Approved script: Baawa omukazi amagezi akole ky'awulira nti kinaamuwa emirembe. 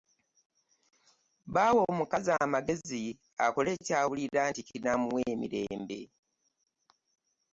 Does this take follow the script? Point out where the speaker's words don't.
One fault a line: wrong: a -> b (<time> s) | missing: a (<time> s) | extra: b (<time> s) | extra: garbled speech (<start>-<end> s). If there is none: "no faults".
no faults